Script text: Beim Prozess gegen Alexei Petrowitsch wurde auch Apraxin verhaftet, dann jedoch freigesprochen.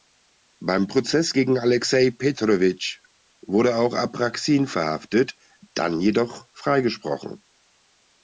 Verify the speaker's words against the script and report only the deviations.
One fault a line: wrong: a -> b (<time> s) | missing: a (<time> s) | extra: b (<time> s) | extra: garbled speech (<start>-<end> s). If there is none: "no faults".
no faults